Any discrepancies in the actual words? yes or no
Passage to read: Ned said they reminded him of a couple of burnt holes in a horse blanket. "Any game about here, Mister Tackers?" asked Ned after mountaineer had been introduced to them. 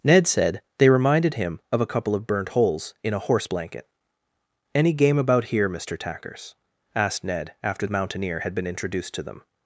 no